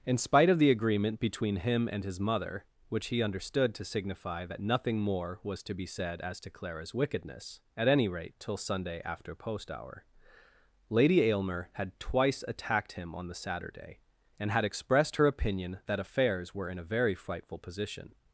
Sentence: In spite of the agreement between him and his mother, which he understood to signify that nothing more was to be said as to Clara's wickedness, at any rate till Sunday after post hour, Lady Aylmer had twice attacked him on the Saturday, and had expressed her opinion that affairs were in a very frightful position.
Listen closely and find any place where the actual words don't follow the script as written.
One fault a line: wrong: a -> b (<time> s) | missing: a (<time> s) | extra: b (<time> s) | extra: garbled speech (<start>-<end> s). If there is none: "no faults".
no faults